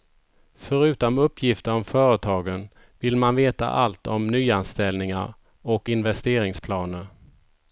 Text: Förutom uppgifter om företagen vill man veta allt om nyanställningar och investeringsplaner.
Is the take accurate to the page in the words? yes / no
yes